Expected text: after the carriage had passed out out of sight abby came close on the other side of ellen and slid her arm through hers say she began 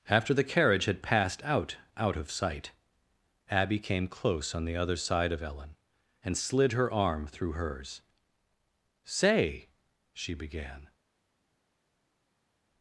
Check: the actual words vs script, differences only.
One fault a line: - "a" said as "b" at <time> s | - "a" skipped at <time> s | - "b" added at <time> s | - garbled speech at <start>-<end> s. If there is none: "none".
none